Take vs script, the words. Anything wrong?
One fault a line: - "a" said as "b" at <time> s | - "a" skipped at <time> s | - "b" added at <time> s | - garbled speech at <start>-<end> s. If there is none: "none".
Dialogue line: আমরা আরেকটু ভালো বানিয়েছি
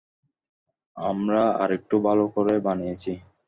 - "করে" added at 2.4 s